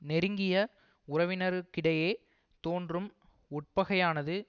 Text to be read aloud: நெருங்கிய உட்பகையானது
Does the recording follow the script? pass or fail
fail